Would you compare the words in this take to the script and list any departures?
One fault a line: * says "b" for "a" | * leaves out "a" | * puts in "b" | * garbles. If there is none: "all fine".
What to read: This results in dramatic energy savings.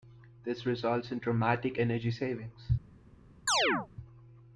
all fine